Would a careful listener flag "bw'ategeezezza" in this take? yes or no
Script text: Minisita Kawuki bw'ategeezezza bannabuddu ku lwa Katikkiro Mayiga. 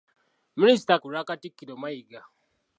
yes